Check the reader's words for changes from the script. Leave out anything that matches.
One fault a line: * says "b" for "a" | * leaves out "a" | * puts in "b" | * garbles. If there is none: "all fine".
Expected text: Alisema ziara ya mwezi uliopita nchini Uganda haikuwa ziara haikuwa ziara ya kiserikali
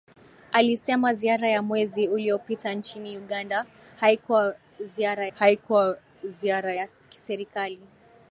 all fine